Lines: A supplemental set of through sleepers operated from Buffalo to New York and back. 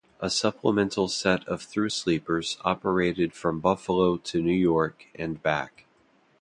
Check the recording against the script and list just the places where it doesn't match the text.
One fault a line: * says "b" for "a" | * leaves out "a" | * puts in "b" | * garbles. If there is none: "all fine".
all fine